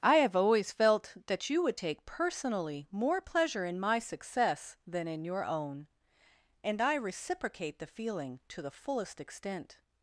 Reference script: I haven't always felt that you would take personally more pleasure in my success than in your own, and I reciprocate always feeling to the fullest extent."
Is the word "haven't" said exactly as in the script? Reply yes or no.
no